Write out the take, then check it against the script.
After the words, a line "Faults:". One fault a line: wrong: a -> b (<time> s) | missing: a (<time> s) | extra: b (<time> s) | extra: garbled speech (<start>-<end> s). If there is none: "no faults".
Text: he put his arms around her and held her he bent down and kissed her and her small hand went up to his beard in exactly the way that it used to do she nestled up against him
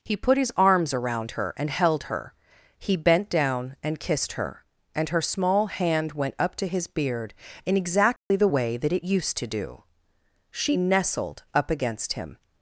he put his arms around her and held her he bent down and kissed her and her small hand went up to his beard in exactly the way that it used to do she nestled up against him
Faults:
no faults